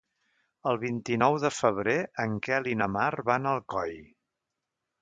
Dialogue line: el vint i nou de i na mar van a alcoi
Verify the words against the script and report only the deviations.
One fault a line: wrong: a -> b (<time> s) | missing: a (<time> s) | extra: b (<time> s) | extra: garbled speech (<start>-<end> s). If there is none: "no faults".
extra: febrer en quel (1.6 s)